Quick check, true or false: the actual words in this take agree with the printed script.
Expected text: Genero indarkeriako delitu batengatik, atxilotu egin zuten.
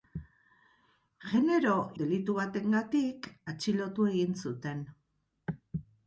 false